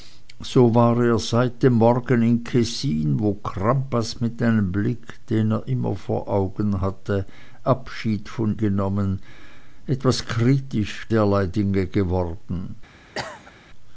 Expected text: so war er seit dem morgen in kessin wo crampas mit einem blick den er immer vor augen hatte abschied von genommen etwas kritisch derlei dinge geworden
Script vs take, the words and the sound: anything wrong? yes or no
yes